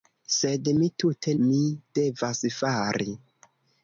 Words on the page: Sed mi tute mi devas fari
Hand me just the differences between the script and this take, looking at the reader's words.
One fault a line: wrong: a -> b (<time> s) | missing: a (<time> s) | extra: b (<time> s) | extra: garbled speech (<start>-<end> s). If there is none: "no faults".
no faults